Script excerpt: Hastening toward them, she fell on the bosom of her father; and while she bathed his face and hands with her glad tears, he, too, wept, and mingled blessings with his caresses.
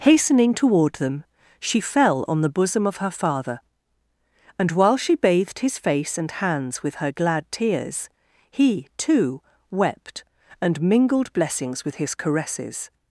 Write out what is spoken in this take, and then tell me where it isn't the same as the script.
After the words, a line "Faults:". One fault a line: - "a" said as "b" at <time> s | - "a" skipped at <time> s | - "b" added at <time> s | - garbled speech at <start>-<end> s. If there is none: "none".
Hastening toward them, she fell on the bosom of her father; and while she bathed his face and hands with her glad tears, he, too, wept, and mingled blessings with his caresses.
Faults:
none